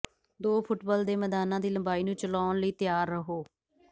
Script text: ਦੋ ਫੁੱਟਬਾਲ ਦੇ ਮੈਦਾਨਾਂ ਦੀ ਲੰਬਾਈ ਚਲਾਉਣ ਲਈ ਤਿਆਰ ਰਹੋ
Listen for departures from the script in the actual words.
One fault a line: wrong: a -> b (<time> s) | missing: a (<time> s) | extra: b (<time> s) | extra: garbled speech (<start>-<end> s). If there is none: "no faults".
extra: ਨੂੰ (2.0 s)